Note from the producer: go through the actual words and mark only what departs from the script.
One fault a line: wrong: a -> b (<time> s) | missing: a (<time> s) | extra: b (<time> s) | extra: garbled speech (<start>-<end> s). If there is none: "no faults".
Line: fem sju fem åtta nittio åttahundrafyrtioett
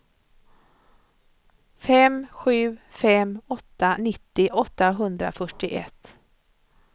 no faults